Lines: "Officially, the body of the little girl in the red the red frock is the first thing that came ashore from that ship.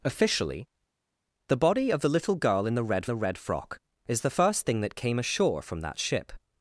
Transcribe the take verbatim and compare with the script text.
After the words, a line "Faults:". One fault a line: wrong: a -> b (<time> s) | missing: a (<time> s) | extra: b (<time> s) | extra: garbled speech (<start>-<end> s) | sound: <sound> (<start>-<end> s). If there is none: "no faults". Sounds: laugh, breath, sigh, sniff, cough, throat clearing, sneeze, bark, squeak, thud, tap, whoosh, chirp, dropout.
"Officially, the body of the little girl in the red the red frock is the first thing that came ashore from that ship.
Faults:
no faults